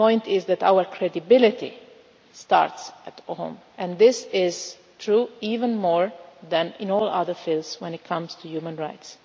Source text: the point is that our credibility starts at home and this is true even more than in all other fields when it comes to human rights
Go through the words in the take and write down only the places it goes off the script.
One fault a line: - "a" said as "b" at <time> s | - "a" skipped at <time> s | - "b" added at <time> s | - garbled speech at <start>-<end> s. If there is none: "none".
none